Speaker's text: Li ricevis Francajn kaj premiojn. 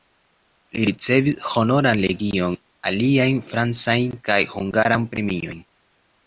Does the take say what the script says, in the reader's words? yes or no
no